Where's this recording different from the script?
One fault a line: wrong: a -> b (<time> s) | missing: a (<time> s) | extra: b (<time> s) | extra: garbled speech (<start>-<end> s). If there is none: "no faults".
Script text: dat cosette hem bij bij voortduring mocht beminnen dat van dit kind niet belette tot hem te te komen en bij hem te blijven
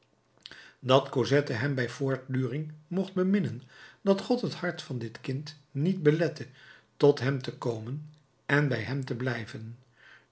missing: bij (1.9 s)
extra: god het hart (4.2 s)
missing: te (7.5 s)